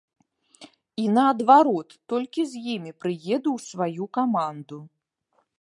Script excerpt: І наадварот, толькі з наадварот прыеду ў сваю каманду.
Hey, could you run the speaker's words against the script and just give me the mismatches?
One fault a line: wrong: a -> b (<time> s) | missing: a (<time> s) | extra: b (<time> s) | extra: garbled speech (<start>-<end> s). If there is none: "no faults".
wrong: наадварот -> імі (2.8 s)